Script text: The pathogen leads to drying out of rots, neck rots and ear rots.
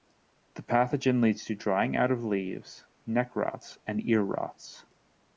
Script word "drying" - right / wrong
right